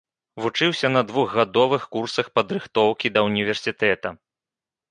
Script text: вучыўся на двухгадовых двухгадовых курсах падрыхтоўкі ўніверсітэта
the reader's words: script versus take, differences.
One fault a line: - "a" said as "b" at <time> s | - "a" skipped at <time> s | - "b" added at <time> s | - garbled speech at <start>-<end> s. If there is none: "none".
- "двухгадовых" skipped at 1.9 s
- "да" added at 3.2 s